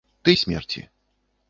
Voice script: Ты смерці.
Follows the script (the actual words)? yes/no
yes